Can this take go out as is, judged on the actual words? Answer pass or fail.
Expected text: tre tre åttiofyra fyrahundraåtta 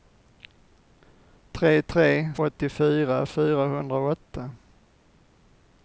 pass